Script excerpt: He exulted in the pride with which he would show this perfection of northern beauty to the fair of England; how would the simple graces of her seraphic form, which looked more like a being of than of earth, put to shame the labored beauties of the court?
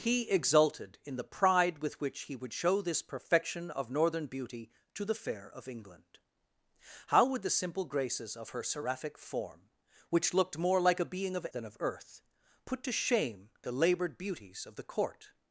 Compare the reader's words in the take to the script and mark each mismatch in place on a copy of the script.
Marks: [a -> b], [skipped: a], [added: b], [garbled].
He exulted in the pride with which he would show this perfection of northern beauty to the fair of England; how would the simple graces of her seraphic form, which looked more like a being of than of earth, put to shame the labored beauties of the court?